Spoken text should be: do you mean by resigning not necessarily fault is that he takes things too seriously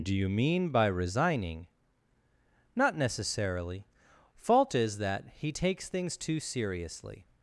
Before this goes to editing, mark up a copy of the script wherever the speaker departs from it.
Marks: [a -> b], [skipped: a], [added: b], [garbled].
do you mean by resigning not necessarily fault is that he takes things too seriously